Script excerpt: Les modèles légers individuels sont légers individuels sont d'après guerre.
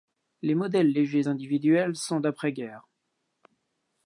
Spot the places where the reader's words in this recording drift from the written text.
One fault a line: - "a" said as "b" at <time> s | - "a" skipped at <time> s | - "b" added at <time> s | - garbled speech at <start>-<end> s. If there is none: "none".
- "légers individuels sont" skipped at 2.2 s